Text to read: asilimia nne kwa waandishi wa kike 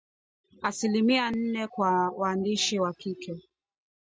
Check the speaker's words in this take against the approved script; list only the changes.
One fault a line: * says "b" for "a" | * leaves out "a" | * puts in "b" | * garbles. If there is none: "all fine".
all fine